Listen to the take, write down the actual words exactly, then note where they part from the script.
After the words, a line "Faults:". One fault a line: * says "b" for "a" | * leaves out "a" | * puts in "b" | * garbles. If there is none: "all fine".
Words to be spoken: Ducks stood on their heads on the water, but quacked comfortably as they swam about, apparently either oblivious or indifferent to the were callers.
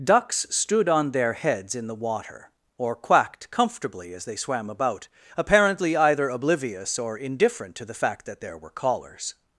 Ducks stood on their heads in the water, or quacked comfortably as they swam about, apparently either oblivious or indifferent to the fact that there were callers.
Faults:
* says "in" for "on"
* says "or" for "but"
* puts in "fact that there"